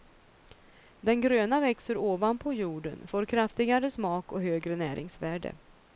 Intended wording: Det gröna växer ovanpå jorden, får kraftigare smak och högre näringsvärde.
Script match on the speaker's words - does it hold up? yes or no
no